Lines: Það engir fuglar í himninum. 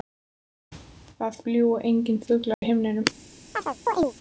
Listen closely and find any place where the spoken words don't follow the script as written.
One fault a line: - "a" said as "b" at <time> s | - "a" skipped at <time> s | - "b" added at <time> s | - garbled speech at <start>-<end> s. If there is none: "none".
- "fljúga" added at 1.4 s